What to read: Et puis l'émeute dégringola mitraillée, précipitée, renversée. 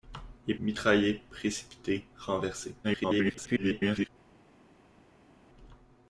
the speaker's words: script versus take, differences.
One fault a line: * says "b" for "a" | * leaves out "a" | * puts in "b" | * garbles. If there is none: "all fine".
* leaves out "puis l'émeute dégringola"
* garbles